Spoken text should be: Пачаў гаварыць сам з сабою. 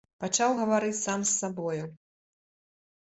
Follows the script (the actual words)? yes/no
yes